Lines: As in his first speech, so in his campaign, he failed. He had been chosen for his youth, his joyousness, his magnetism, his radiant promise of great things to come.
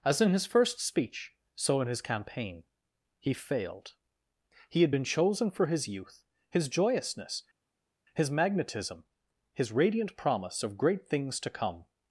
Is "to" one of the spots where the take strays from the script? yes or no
no